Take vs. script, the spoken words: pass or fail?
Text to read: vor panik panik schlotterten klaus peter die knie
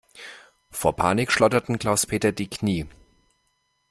fail